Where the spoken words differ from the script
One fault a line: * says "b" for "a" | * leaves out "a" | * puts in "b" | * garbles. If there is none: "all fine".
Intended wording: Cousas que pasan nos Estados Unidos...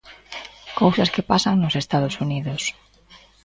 all fine